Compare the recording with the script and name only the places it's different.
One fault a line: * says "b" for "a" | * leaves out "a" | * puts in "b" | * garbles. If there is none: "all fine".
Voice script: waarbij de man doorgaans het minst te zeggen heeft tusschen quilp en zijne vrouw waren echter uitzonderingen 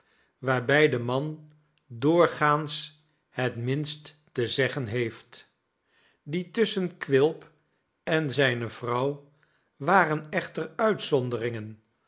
* puts in "die"